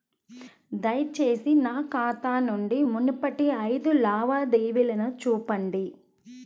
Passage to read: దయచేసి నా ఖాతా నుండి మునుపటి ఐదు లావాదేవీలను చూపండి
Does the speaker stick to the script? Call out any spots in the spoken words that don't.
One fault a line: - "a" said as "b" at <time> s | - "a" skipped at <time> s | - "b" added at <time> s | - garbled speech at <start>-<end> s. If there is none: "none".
none